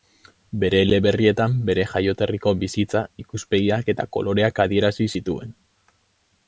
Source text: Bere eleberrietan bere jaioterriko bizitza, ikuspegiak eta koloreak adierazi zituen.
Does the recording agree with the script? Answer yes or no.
yes